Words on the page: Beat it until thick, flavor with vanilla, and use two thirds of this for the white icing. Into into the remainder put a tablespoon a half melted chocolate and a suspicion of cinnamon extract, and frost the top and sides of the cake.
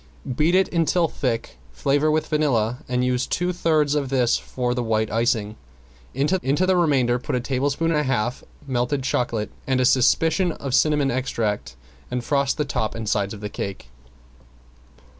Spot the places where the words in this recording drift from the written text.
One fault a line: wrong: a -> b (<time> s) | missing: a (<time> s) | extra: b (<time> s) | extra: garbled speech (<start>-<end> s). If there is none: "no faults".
no faults